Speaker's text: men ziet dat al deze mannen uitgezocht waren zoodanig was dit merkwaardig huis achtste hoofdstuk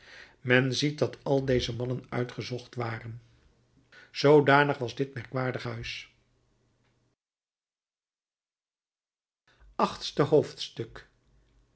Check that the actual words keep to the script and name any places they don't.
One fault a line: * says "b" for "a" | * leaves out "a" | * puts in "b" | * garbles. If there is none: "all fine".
all fine